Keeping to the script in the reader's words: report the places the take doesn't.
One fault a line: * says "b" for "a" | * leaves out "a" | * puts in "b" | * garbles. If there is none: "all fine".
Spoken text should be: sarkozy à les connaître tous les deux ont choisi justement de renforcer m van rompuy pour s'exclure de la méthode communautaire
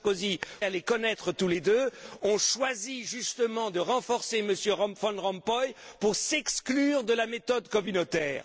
all fine